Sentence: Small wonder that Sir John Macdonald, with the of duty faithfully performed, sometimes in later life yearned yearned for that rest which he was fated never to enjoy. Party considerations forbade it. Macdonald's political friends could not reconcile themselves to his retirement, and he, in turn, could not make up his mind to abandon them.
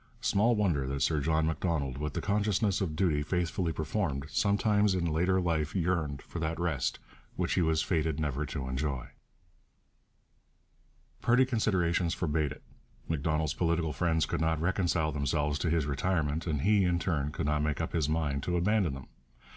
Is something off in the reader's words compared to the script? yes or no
yes